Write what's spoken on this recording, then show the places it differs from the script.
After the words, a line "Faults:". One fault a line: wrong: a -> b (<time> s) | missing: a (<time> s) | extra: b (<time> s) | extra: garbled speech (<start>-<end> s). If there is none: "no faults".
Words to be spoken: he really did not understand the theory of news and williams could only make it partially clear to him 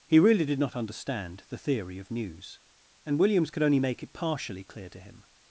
he really did not understand the theory of news and williams could only make it partially clear to him
Faults:
no faults